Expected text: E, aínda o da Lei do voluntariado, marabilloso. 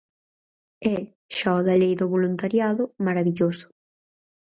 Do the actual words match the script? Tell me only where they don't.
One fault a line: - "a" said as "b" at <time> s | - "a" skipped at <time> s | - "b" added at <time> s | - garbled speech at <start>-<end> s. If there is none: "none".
- "aínda" said as "xa" at 1.4 s